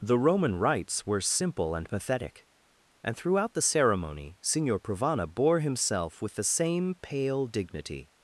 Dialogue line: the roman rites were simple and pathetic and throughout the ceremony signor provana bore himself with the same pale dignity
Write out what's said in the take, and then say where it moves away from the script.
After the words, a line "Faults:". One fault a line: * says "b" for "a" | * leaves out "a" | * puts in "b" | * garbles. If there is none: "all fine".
the roman rites were simple and pathetic and throughout the ceremony signor provana bore himself with the same pale dignity
Faults:
all fine